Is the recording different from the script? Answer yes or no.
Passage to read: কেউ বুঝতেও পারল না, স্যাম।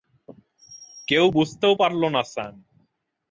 no